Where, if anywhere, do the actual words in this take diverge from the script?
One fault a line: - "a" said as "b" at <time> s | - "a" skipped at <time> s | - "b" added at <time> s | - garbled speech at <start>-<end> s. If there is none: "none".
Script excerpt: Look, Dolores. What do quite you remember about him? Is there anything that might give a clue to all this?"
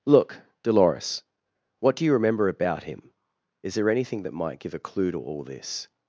- "quite" skipped at 2.0 s